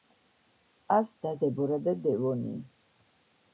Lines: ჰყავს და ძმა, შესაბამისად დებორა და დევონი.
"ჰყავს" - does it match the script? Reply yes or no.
yes